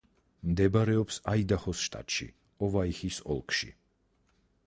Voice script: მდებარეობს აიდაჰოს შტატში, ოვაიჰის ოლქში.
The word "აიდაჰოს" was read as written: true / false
true